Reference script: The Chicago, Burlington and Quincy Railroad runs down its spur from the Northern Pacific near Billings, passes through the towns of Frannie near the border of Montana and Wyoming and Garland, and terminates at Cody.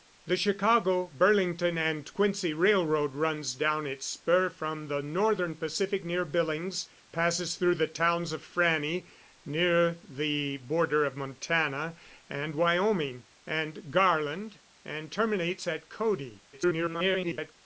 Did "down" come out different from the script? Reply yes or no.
no